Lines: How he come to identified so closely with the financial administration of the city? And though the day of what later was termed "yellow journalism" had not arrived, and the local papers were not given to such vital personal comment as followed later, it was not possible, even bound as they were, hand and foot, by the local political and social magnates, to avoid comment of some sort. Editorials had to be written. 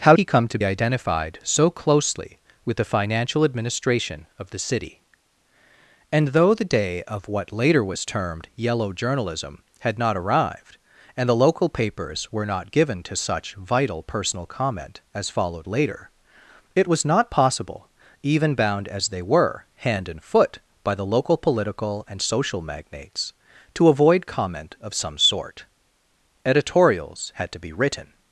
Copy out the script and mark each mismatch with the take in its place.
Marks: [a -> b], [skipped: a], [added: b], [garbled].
How he come to identified so closely with the financial administration of the city? And though the day of what later was termed "yellow journalism" had not arrived, and the local papers were not given to such vital personal comment as followed later, it was not possible, even bound as they were, hand and foot, by the local political and social magnates, to avoid comment of some sort. Editorials had to be written.